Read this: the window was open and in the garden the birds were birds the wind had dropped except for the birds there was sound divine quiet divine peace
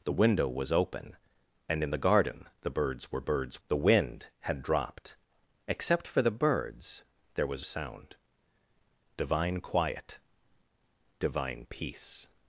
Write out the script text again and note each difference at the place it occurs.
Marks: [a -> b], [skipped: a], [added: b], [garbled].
the window was open and in the garden the birds were birds the wind had dropped except for the birds there was sound divine quiet divine peace